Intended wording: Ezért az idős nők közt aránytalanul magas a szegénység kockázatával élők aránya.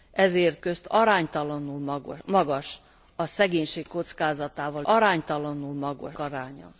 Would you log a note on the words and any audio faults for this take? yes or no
yes